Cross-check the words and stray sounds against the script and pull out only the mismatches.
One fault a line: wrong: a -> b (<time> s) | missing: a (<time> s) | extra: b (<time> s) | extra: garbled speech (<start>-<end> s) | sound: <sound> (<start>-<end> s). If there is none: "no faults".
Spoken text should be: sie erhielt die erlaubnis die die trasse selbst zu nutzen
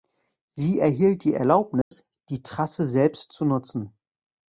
sound: dropout (1.8-1.9 s)
missing: die (2.4 s)